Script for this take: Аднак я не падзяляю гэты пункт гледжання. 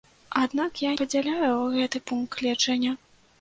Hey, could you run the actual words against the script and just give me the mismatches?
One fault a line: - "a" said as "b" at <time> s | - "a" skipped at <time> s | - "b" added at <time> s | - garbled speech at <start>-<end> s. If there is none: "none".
- "не" skipped at 0.9 s